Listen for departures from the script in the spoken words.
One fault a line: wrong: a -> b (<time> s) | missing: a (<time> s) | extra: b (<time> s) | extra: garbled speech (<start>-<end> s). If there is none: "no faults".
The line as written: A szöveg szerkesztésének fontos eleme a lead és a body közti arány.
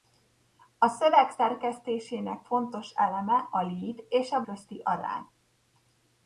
missing: body (4.4 s)